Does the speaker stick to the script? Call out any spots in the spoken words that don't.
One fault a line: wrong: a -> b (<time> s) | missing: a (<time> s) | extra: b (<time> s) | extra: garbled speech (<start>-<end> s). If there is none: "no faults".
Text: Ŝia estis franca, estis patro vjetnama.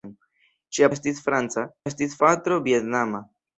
no faults